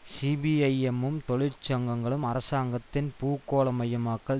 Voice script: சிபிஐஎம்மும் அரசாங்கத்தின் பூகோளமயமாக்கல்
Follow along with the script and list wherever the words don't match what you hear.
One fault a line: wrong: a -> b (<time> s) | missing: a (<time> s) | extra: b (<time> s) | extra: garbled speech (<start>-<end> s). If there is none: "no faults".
extra: தொழிற்சங்கங்களும் (1.3 s)